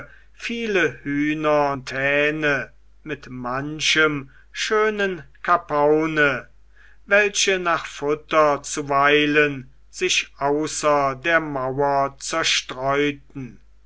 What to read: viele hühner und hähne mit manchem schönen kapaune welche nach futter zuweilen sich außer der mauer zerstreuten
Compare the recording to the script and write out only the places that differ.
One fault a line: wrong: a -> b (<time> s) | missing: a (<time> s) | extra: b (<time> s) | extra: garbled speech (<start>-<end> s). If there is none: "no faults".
no faults